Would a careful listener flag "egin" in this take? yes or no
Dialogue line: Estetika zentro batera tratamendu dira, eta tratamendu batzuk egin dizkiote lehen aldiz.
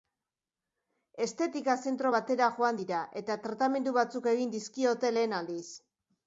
no